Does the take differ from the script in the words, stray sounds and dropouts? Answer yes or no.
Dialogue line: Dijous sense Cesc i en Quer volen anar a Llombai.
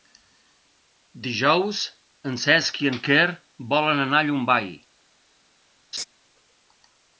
yes